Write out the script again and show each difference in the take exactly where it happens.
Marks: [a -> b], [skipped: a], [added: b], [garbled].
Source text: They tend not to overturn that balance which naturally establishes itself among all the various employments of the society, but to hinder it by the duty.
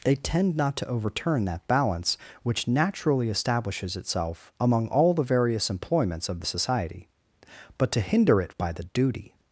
They tend not to overturn that balance which naturally establishes itself among all the various employments of the society, but to hinder it by the duty.